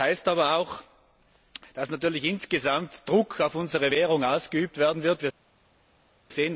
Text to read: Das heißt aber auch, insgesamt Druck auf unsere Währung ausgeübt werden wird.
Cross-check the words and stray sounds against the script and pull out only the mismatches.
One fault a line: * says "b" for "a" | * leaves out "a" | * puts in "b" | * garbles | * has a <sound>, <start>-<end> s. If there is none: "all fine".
* puts in "dass natürlich"